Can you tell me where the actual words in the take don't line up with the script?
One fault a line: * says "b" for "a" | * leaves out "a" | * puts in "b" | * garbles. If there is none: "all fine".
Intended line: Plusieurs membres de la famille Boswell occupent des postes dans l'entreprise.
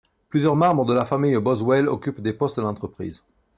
all fine